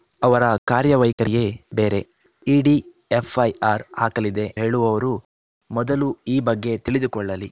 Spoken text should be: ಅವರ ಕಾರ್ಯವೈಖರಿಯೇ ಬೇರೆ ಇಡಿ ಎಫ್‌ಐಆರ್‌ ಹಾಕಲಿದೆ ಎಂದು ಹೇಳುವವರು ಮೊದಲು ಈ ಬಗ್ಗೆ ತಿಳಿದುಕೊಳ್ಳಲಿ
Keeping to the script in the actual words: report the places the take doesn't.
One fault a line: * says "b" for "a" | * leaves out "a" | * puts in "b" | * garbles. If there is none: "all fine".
* leaves out "ಎಂದು"